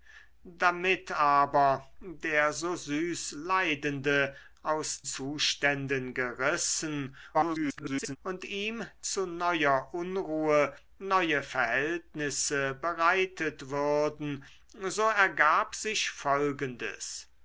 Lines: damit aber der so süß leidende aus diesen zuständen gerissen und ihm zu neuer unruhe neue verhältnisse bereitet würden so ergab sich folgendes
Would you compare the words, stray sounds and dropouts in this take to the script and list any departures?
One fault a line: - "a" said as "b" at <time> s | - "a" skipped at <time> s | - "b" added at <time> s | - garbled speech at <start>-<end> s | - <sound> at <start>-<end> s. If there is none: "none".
- "diesen" skipped at 5.0 s
- garbled speech at 7.3-8.2 s